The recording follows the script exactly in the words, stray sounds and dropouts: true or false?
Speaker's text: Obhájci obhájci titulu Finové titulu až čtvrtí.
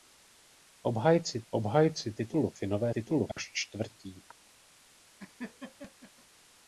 false